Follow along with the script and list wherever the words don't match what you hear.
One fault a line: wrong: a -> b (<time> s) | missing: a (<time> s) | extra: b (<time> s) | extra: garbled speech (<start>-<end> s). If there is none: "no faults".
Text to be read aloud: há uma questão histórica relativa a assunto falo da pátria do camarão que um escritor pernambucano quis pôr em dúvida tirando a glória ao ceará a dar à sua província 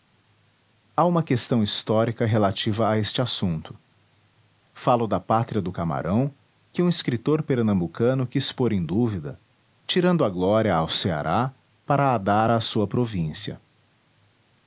extra: este (3.0 s)
extra: para (11.8 s)